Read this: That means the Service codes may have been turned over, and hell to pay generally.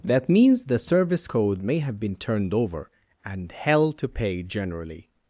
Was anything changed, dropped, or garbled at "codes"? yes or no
yes